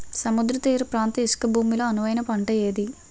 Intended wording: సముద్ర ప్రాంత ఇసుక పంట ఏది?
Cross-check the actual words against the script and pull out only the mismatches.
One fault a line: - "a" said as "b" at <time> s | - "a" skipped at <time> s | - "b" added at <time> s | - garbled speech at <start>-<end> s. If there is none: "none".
- "తీర" added at 0.6 s
- "భూమి లో అనువైన" added at 1.5 s